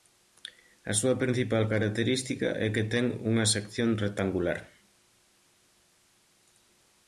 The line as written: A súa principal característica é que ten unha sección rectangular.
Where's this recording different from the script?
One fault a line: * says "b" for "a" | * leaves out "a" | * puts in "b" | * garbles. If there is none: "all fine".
all fine